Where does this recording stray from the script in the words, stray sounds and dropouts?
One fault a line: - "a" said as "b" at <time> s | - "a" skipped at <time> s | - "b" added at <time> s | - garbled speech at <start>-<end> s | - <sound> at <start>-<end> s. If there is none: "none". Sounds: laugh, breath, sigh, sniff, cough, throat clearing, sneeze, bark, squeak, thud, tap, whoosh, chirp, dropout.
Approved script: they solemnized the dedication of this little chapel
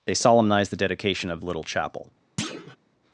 - "this" skipped at 1.4 s
- thud at 2.4-2.8 s